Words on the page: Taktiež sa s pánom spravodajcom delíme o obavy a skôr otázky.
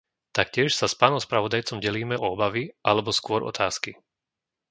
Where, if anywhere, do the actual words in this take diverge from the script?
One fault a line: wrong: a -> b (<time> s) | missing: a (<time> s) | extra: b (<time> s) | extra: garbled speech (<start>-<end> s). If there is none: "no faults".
wrong: a -> alebo (2.8 s)